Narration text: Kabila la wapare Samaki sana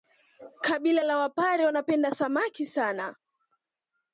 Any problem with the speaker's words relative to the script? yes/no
yes